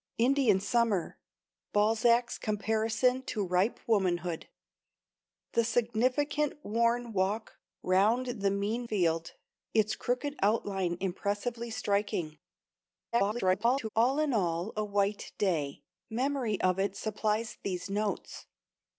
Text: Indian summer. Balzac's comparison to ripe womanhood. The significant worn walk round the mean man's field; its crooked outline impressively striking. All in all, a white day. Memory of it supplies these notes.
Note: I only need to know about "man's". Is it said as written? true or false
false